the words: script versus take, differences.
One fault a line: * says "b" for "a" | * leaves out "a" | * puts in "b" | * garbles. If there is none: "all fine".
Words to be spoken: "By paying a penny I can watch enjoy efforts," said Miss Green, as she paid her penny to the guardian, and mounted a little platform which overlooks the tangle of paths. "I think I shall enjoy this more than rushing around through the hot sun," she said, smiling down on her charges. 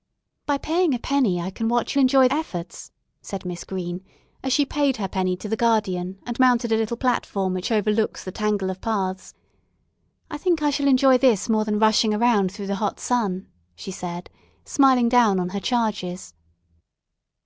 all fine